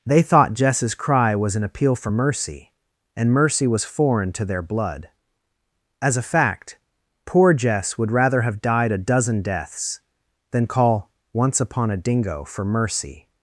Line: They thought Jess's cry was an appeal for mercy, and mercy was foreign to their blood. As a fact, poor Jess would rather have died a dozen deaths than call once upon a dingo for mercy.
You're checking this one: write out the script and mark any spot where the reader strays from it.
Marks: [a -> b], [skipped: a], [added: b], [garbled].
They thought Jess's cry was an appeal for mercy, and mercy was foreign to their blood. As a fact, poor Jess would rather have died a dozen deaths than call once upon a dingo for mercy.